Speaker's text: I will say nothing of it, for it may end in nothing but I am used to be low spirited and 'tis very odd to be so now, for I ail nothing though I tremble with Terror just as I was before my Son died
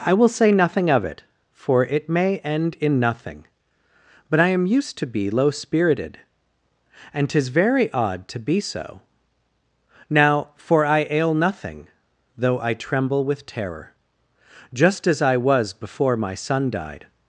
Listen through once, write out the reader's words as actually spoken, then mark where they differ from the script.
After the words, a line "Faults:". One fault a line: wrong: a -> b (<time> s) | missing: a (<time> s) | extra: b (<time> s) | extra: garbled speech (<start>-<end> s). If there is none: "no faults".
I will say nothing of it, for it may end in nothing but I am used to be low spirited and 'tis very odd to be so now, for I ail nothing though I tremble with Terror just as I was before my Son died
Faults:
no faults